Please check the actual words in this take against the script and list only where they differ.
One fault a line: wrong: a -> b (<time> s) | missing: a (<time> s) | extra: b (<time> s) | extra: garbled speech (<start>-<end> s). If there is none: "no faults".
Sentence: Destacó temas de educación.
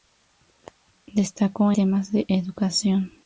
no faults